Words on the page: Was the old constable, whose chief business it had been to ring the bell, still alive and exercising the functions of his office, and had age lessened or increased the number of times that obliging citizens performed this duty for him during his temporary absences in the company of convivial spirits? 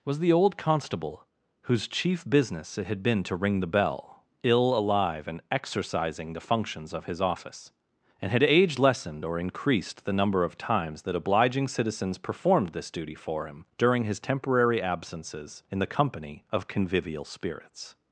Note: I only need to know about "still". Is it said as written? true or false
false